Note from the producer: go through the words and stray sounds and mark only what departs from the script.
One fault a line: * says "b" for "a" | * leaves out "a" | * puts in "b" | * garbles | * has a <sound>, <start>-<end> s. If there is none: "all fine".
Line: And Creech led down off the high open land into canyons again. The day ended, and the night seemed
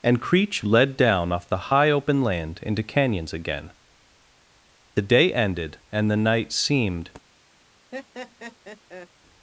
* has a laugh, 7.9-9.1 s